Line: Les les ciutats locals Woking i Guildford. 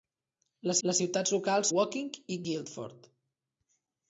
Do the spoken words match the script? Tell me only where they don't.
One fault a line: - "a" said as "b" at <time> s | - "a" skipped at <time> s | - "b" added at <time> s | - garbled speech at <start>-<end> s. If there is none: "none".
none